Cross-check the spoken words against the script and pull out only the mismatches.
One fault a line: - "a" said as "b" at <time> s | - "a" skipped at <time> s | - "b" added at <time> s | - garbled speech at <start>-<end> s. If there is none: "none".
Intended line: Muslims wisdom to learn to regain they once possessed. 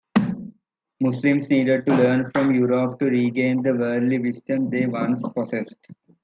- "wisdom" said as "needed" at 1.5 s
- "from Europe" added at 2.3 s
- "the worldly wisdom" added at 3.6 s